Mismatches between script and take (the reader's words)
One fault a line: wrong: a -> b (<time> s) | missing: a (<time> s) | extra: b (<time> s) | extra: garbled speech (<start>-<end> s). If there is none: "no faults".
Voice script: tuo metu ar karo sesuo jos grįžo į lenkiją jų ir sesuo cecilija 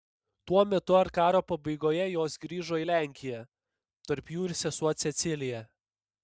wrong: sesuo -> pabaigoje (1.5 s)
extra: tarp (4.1 s)